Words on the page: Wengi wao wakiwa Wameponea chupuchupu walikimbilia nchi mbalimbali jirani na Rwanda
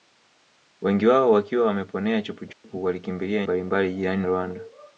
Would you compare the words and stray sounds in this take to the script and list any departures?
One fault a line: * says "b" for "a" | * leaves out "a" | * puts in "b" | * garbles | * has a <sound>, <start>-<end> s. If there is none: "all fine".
* has a dropout, 2.5-2.6 s
* leaves out "nchi"
* leaves out "na"